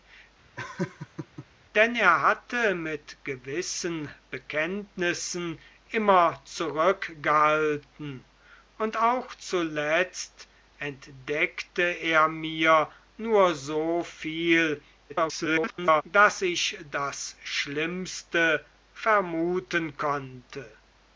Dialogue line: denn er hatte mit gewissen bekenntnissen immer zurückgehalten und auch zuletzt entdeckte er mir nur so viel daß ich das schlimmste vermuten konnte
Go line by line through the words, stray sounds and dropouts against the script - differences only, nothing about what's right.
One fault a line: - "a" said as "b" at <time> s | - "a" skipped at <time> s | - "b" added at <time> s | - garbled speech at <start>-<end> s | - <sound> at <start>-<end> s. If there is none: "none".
- laugh at 0.6-1.5 s
- garbled speech at 15.1-16.0 s